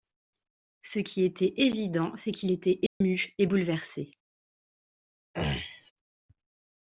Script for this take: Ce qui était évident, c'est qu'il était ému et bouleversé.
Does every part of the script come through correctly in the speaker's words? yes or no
yes